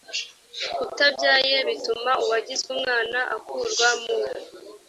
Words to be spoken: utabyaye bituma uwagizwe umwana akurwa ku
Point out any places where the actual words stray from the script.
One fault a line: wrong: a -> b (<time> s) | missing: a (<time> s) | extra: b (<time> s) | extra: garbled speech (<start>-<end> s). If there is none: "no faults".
wrong: ku -> mu (4.0 s)